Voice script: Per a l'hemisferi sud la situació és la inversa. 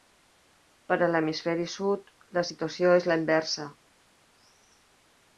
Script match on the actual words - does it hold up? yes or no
yes